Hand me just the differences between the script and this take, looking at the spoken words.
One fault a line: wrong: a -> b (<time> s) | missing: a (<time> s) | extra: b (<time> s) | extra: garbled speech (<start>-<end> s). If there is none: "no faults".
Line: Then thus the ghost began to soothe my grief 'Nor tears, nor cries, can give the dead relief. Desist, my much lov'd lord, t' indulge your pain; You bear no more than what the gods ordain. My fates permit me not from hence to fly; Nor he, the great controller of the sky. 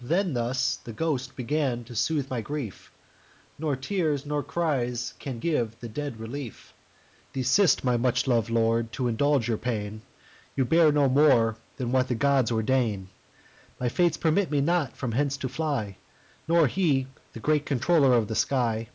no faults